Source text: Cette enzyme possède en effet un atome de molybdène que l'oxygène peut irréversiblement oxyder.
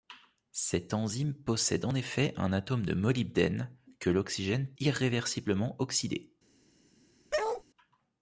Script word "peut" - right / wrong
wrong